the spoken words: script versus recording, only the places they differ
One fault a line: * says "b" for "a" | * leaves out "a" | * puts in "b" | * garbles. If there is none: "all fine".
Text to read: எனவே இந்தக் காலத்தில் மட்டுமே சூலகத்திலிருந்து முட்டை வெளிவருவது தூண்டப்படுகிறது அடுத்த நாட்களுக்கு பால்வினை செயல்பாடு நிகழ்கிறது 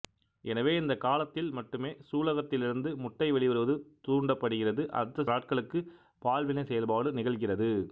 all fine